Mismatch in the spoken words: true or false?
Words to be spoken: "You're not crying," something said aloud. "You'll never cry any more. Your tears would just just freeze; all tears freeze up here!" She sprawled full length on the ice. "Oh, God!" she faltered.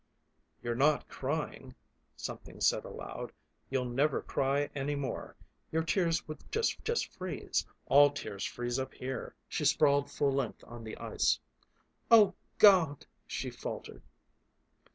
false